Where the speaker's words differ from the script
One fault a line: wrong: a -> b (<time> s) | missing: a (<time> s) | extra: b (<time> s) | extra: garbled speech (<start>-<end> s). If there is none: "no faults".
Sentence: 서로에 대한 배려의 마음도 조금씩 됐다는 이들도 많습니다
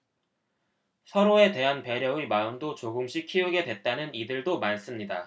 extra: 키우게 (3.3 s)